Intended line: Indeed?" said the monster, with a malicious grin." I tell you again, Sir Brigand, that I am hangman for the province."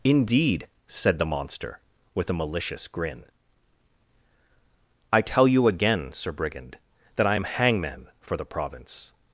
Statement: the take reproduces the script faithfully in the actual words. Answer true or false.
true